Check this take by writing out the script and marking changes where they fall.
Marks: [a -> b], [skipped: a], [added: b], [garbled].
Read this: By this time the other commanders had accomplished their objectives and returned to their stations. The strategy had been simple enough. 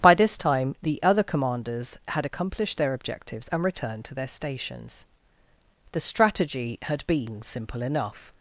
By this time the other commanders had accomplished their objectives and returned to their stations. The strategy had been simple enough.